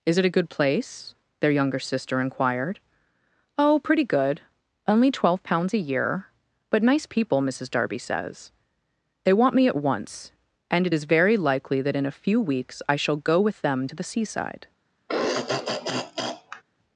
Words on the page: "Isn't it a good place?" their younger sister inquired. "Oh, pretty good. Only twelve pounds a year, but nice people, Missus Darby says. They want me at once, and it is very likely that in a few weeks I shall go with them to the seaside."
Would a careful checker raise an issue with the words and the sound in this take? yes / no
yes